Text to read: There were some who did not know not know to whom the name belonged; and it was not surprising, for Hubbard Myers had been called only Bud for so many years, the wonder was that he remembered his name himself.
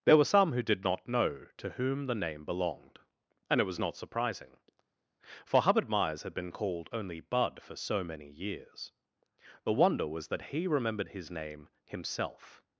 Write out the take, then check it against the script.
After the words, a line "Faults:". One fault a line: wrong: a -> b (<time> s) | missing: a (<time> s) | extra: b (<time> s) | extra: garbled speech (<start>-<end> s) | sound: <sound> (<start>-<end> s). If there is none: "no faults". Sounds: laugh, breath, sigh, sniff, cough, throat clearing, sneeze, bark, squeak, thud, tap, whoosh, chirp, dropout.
There were some who did not know to whom the name belonged; and it was not surprising, for Hubbard Myers had been called only Bud for so many years, the wonder was that he remembered his name himself.
Faults:
missing: not know (1.5 s)